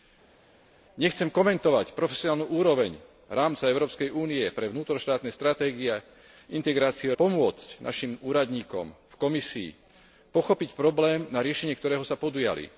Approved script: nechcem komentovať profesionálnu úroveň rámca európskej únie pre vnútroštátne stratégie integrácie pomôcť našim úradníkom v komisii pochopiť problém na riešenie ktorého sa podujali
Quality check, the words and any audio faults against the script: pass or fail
pass